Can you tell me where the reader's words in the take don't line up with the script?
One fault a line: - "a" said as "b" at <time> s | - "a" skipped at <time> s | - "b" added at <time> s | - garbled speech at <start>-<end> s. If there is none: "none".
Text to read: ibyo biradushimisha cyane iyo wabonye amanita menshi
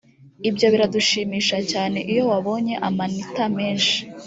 none